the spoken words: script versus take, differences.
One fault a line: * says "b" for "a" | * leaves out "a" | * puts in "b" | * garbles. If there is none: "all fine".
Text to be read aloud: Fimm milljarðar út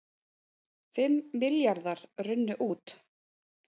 * puts in "runnu"